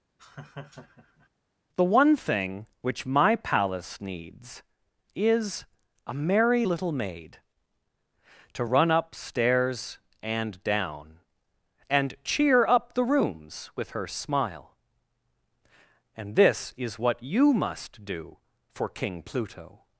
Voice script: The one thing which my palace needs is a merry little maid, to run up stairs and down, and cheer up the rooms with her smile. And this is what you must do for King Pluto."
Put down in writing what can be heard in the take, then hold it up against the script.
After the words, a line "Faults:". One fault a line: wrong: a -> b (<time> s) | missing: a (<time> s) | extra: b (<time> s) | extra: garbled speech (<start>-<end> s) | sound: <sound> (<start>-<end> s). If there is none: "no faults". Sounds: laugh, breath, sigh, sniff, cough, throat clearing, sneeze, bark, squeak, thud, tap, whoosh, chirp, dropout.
The one thing which my palace needs is a merry little maid, to run up stairs and down, and cheer up the rooms with her smile. And this is what you must do for King Pluto."
Faults:
sound: laugh (0.2-1.3 s)